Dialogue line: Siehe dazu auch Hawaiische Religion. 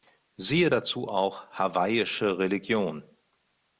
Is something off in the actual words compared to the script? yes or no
no